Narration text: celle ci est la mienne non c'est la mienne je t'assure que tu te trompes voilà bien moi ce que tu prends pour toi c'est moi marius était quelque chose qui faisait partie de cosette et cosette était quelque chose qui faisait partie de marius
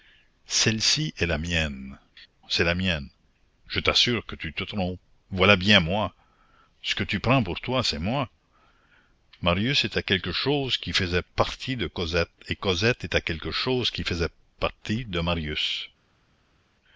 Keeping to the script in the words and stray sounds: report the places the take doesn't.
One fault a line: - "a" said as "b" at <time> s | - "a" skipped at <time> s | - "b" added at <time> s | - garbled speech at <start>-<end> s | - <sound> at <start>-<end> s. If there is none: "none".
- "non" skipped at 2.0 s